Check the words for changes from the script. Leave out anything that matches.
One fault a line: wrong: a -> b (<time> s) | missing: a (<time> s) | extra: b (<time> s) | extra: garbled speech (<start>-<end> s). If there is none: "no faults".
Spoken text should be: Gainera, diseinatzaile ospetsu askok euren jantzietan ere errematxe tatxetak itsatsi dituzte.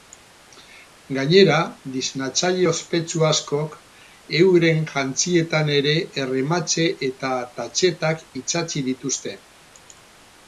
extra: eta (7.1 s)